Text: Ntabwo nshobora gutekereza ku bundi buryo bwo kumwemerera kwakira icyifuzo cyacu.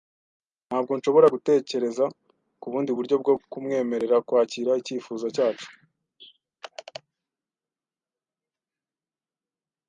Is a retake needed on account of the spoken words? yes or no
no